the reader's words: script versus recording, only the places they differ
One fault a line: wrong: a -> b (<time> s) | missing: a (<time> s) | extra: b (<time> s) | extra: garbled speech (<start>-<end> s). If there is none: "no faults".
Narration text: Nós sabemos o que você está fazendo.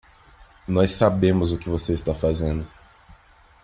no faults